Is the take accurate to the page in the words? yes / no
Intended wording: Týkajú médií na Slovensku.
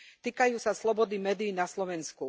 no